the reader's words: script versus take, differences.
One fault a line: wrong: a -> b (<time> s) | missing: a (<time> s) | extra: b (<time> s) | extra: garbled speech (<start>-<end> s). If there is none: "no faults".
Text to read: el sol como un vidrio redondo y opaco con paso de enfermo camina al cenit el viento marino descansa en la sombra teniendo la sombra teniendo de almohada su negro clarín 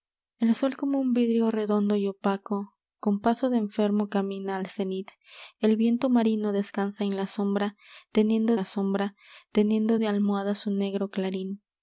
no faults